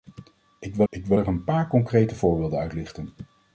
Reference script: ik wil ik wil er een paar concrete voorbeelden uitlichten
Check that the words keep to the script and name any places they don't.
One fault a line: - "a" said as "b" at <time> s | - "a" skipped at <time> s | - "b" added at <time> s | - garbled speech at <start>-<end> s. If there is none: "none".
none